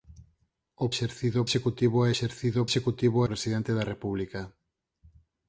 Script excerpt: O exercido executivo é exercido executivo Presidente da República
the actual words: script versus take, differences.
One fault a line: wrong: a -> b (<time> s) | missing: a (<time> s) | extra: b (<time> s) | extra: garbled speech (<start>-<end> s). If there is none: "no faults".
no faults